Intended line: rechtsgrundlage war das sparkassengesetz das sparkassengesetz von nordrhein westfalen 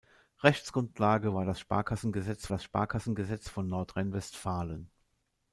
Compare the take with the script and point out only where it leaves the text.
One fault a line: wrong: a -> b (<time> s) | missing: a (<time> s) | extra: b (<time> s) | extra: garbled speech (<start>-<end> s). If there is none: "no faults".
no faults